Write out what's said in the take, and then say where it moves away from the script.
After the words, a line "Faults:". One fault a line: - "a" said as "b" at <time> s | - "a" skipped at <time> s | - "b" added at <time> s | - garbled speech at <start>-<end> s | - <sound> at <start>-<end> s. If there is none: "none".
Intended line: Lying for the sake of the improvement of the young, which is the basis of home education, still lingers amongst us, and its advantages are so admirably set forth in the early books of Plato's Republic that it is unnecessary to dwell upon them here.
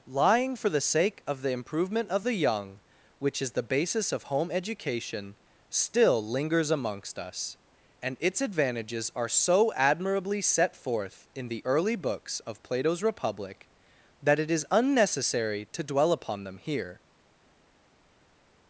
Lying for the sake of the improvement of the young, which is the basis of home education, still lingers amongst us, and its advantages are so admirably set forth in the early books of Plato's Republic that it is unnecessary to dwell upon them here.
Faults:
none